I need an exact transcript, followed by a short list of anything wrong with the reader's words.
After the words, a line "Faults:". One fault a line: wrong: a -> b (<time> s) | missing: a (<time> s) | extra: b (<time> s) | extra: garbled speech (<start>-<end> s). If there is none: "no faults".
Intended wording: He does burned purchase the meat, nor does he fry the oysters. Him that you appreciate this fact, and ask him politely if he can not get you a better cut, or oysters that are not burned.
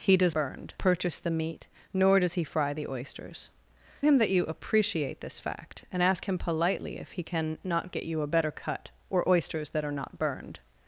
He does burned purchase the meat, nor does he fry the oysters. Him that you appreciate this fact, and ask him politely if he can not get you a better cut, or oysters that are not burned.
Faults:
no faults